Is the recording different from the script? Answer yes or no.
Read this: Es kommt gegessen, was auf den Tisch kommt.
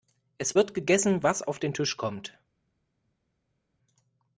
yes